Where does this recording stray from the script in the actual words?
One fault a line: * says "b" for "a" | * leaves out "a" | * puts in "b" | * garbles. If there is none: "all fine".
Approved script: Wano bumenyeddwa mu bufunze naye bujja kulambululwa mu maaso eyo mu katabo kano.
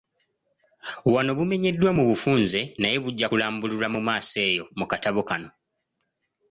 all fine